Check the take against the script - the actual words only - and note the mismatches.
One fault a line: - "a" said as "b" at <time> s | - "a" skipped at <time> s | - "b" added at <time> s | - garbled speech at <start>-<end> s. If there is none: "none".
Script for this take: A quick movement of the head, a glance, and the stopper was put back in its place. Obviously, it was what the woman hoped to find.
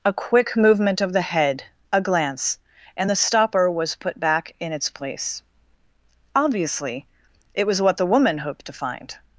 none